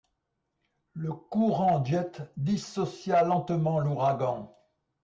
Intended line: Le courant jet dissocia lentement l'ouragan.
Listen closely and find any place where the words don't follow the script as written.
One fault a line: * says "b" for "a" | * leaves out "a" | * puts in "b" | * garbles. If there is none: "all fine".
all fine